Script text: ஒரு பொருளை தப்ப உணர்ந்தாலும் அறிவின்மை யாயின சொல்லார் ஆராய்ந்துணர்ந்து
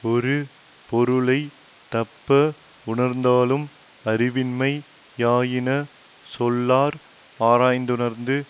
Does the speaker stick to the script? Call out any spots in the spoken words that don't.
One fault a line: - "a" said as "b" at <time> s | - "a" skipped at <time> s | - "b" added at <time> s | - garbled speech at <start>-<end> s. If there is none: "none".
none